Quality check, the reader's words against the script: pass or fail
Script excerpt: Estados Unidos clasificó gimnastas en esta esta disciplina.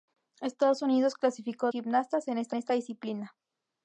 pass